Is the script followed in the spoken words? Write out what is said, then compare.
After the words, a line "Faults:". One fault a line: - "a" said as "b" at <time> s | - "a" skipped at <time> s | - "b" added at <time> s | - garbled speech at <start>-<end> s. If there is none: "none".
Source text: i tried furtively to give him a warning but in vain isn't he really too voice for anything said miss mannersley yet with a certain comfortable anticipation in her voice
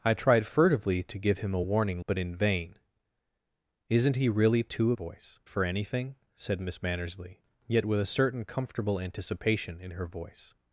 i tried furtively to give him a warning but in vain isn't he really too voice for anything said miss mannersley yet with a certain comfortable anticipation in her voice
Faults:
none